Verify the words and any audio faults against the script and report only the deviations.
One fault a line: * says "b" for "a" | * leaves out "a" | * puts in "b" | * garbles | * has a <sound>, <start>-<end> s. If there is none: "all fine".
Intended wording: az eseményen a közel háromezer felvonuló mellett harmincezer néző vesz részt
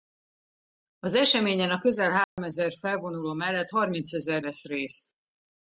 * has a dropout, 2.2-2.4 s
* leaves out "néző"